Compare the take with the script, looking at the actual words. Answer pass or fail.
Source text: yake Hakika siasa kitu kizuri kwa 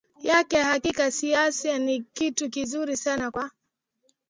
fail